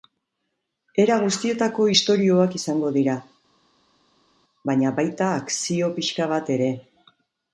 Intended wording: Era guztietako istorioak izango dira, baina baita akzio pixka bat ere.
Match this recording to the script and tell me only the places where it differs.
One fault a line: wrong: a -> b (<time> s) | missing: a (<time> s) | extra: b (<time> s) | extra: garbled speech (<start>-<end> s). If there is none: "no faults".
no faults